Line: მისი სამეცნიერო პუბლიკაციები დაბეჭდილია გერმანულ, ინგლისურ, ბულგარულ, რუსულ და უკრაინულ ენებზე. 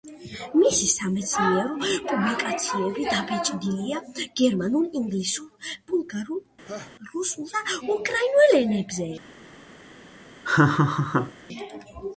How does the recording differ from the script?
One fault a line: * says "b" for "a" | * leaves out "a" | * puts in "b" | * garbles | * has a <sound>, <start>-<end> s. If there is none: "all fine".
* has a laugh, 6.6-6.9 s
* has a laugh, 10.4-11.3 s